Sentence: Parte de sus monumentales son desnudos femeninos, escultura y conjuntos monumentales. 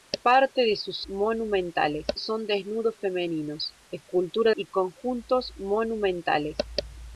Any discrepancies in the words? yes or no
no